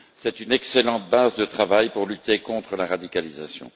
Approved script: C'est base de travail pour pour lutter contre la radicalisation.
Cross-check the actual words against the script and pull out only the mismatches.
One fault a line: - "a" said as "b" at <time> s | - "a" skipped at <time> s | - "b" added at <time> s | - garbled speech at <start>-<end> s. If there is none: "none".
- "une excellente" added at 0.4 s
- "pour" skipped at 2.0 s